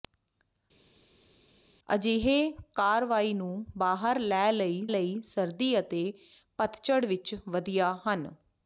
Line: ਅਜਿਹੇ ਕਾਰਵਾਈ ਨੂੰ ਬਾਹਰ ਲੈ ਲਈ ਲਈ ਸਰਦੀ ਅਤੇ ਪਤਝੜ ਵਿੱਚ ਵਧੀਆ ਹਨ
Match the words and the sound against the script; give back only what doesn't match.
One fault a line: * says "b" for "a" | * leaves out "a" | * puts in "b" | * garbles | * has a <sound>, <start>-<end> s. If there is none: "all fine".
all fine